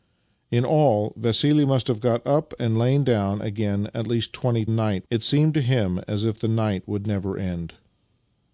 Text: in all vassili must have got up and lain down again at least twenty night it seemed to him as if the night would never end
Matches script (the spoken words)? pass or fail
pass